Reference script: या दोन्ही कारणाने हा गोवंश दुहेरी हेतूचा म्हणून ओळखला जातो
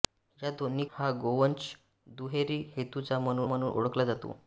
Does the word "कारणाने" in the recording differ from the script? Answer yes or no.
yes